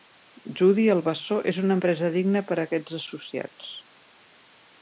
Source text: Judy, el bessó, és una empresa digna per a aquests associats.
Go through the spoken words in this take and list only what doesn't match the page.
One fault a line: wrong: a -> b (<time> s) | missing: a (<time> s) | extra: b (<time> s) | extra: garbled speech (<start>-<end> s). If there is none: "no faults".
no faults